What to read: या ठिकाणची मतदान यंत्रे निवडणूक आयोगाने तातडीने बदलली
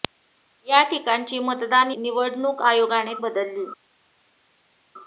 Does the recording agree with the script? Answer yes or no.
no